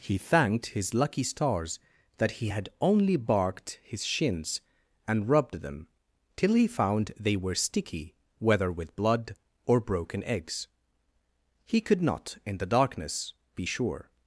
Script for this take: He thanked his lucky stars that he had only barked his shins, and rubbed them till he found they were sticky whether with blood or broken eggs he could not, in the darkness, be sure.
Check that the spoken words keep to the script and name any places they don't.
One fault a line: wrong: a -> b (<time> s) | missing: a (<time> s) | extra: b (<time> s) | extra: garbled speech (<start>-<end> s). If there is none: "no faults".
no faults